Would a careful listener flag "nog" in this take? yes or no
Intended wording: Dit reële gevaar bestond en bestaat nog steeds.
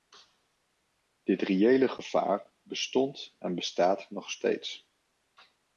no